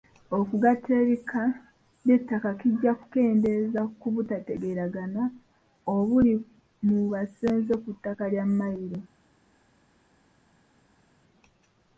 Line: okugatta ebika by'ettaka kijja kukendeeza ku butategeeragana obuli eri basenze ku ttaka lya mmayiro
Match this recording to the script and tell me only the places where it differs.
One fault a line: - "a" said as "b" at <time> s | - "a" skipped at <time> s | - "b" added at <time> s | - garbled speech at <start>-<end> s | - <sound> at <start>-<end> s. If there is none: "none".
- "eri" said as "mu" at 6.9 s